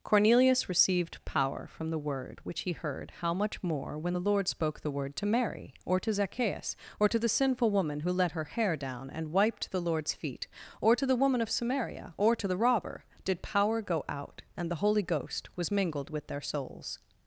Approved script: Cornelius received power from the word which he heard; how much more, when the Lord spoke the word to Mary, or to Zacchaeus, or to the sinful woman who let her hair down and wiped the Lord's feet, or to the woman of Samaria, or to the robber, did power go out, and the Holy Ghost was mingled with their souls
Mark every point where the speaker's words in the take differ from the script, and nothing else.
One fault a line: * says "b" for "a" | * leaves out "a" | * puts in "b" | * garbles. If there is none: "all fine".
all fine